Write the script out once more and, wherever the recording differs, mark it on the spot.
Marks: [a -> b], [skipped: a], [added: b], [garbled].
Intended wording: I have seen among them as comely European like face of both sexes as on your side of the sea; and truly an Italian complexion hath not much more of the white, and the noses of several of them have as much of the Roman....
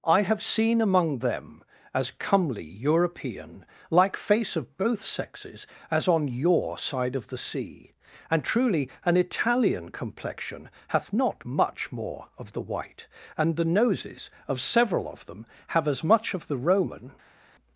I have seen among them as comely European like face of both sexes as on your side of the sea; and truly an Italian complexion hath not much more of the white, and the noses of several of them have as much of the Roman....